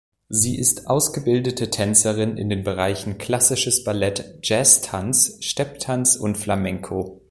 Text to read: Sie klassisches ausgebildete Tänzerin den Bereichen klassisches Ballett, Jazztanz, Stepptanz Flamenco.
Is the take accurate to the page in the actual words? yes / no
no